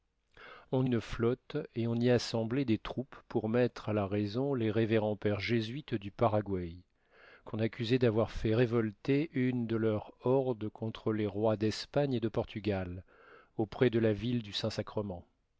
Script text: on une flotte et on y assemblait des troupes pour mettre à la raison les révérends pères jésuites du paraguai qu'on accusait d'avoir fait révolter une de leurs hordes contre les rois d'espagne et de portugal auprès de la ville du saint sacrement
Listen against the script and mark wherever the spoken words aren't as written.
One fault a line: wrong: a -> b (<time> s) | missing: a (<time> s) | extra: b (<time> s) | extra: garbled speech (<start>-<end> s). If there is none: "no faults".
no faults